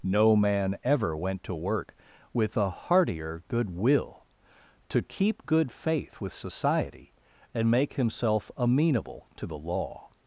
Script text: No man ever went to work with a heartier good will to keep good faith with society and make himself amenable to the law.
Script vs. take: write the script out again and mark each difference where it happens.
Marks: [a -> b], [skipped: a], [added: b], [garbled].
No man ever went to work with a heartier good will to keep good faith with society and make himself amenable to the law.